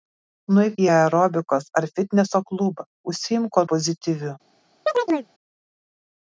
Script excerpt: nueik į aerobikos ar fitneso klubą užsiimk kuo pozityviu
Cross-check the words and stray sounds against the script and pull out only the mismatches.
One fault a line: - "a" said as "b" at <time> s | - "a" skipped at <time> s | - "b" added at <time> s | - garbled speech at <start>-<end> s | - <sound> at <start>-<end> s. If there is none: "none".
- chirp at 4.9-5.3 s